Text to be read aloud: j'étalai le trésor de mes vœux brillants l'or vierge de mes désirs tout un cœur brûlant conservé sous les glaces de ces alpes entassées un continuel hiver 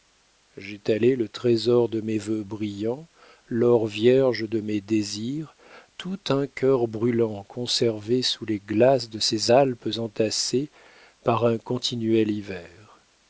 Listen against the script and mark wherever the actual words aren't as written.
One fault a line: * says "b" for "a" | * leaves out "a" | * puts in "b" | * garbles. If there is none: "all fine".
* puts in "par"